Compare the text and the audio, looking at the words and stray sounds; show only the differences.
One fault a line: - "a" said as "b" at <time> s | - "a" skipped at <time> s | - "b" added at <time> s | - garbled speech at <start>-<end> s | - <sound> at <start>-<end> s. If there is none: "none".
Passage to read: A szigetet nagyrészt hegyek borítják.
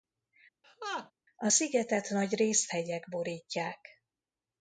- laugh at 0.6-1.1 s